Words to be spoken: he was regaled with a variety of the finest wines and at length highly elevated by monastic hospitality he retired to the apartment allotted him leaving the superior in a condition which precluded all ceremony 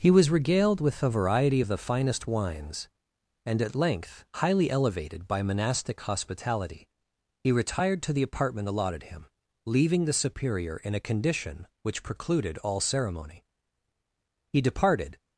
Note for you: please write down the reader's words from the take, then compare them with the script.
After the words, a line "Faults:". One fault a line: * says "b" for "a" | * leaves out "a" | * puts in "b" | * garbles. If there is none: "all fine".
he was regaled with a variety of the finest wines and at length highly elevated by monastic hospitality he retired to the apartment allotted him leaving the superior in a condition which precluded all ceremony he departed
Faults:
* puts in "he departed"